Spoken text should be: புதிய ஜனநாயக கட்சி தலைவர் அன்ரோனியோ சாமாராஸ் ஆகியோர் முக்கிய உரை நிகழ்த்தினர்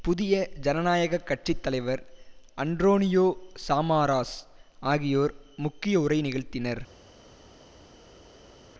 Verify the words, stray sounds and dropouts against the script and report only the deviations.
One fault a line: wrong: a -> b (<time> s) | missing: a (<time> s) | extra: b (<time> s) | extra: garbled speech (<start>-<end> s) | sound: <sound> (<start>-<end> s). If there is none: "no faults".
no faults